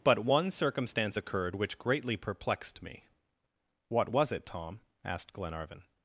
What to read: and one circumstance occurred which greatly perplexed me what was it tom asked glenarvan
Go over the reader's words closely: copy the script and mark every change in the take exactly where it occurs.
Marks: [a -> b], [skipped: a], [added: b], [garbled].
[and -> but] one circumstance occurred which greatly perplexed me what was it tom asked glenarvan